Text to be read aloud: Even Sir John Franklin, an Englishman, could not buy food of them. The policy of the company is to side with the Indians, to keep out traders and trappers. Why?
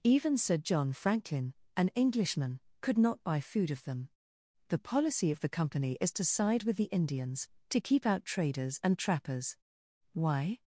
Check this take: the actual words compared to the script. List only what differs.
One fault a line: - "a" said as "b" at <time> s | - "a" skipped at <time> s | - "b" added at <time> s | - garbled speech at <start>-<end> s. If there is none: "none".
none